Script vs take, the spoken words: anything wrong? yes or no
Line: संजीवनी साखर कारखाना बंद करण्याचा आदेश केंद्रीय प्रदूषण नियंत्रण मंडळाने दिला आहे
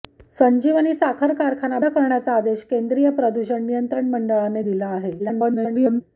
yes